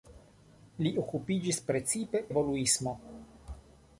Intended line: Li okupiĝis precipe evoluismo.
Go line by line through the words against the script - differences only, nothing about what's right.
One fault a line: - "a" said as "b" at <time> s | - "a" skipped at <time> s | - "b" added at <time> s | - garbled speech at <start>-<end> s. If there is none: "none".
none